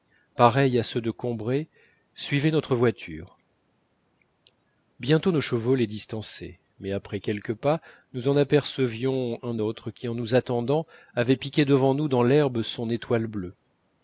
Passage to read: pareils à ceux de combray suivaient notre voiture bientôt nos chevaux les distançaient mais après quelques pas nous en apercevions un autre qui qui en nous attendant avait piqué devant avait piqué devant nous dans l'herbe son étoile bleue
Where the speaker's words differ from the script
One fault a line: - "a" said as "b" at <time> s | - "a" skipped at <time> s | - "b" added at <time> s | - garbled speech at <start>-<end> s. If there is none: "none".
- "qui" skipped at 10.1 s
- "avait piqué devant" skipped at 11.9 s